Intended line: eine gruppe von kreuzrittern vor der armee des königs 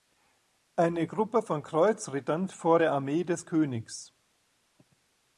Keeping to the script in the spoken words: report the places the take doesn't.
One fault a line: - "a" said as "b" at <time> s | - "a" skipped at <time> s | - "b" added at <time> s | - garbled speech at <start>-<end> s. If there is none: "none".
none